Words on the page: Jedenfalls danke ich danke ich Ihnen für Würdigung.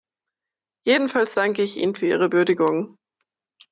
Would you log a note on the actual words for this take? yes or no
yes